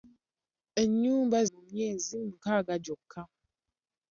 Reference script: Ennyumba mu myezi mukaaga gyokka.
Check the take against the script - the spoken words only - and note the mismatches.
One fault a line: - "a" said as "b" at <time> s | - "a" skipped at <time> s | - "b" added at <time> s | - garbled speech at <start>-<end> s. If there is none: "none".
none